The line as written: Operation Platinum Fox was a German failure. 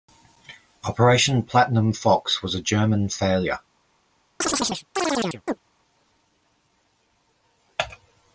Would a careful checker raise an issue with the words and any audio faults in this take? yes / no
yes